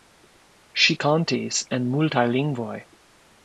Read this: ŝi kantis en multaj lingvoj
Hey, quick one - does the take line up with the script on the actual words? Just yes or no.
yes